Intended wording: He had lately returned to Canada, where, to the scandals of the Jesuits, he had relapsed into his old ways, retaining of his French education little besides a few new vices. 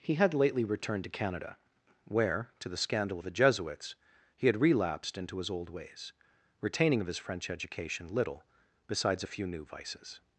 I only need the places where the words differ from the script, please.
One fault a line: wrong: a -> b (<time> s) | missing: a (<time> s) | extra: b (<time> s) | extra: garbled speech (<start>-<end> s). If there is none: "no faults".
wrong: scandals -> scandal (2.8 s)